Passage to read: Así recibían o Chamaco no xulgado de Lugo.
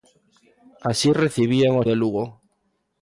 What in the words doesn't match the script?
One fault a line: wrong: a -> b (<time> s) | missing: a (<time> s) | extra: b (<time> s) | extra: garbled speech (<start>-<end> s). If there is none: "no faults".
missing: Chamaco no xulgado (1.9 s)